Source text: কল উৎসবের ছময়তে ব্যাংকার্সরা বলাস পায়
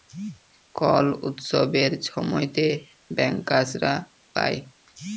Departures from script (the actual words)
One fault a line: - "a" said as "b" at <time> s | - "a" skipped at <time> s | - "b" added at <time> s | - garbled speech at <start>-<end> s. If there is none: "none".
- "বলাস" skipped at 3.9 s